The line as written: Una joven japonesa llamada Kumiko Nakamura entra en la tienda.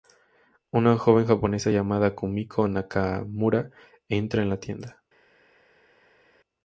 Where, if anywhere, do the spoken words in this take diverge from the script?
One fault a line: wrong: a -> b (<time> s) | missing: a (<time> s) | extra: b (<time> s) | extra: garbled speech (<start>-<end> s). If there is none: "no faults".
no faults